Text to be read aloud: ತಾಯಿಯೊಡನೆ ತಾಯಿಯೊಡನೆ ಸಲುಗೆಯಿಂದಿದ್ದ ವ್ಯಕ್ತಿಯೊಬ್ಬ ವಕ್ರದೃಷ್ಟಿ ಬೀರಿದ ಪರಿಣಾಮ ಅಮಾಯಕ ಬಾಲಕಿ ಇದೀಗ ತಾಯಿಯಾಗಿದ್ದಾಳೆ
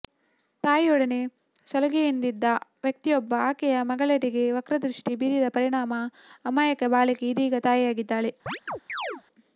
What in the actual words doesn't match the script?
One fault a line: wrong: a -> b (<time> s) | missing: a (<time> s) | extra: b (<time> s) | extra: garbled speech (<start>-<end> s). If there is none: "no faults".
missing: ತಾಯಿಯೊಡನೆ (1.2 s)
extra: ಆಕೆಯ ಮಗಳೆಡೆಗೆ (3.5 s)